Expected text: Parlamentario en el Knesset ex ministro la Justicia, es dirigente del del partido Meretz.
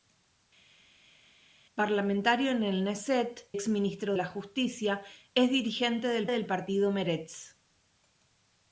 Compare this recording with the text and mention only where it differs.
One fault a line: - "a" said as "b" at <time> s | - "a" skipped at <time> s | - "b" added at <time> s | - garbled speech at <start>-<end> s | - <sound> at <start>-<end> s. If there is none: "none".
none